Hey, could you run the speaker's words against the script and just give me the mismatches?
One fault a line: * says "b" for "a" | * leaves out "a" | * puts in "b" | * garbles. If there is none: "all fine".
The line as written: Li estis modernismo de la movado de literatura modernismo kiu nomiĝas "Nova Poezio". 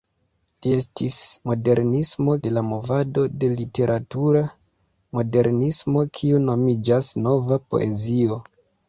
all fine